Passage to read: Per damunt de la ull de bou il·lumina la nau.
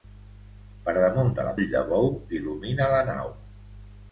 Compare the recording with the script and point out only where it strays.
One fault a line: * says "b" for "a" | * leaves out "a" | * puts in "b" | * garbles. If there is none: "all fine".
all fine